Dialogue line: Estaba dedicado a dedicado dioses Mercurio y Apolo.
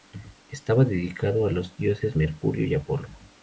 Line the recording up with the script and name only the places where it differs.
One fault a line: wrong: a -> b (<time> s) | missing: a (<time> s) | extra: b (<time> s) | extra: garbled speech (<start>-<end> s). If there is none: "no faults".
wrong: dedicado -> los (1.5 s)